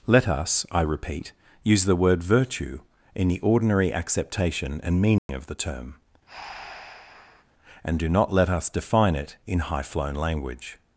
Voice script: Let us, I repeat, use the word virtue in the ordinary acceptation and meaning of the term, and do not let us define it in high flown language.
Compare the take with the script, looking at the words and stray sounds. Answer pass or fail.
fail